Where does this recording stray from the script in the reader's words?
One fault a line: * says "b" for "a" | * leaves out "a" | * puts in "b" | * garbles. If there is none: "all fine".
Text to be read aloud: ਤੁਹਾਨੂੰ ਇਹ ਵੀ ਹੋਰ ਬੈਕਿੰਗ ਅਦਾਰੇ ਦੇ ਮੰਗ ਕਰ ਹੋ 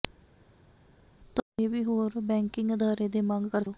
all fine